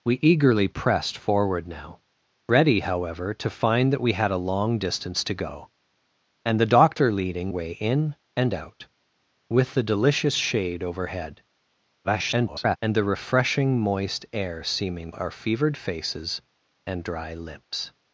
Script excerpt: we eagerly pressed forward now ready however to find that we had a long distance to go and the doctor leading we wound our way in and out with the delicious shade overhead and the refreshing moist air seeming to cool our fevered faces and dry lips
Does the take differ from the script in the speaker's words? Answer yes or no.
yes